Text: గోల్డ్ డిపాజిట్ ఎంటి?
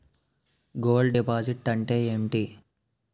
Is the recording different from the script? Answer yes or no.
yes